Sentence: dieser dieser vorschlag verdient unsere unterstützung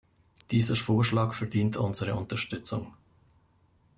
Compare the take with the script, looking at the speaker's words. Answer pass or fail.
fail